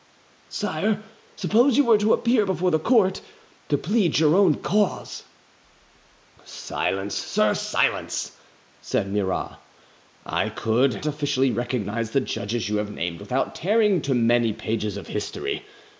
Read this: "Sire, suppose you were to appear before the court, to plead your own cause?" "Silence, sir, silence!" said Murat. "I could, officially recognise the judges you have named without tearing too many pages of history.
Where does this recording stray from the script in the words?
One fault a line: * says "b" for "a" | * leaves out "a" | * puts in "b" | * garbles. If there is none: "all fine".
all fine